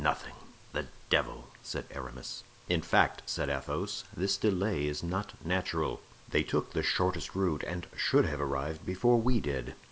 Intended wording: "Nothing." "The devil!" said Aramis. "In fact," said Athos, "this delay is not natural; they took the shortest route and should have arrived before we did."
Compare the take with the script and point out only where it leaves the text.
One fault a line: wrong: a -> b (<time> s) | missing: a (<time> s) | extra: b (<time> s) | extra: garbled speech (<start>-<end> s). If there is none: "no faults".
no faults